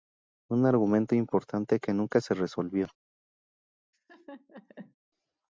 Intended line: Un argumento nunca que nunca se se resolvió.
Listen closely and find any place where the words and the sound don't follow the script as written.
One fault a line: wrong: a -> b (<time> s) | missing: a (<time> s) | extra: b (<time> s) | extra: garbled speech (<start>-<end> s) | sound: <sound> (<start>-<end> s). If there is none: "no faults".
wrong: nunca -> importante (1.1 s)
missing: se (2.3 s)
sound: laugh (3.9-5.0 s)